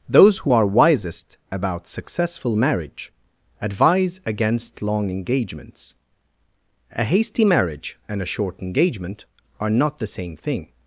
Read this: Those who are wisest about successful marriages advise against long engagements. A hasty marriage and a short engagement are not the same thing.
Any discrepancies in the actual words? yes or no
yes